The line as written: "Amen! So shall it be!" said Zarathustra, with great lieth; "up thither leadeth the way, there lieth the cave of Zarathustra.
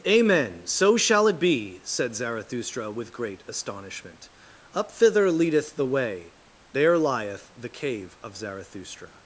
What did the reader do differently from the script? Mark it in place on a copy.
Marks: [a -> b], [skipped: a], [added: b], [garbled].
"Amen! So shall it be!" said Zarathustra, with great [lieth; -> astonishment] "up thither leadeth the way, there lieth the cave of Zarathustra.